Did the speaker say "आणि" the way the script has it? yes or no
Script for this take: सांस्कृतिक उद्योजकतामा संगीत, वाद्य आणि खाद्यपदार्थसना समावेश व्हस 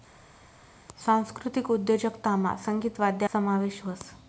no